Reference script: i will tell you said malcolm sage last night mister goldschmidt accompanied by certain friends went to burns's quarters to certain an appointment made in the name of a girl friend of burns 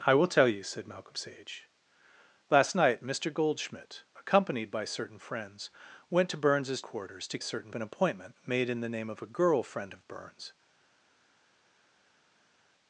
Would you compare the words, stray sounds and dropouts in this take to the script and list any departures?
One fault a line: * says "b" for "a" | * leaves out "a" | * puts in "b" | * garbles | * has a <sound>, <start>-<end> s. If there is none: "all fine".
all fine